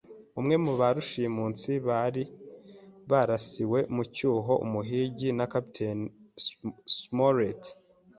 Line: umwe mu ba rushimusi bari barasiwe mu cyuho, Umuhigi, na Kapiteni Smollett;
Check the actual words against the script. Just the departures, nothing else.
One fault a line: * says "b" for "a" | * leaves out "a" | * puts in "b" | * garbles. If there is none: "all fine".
all fine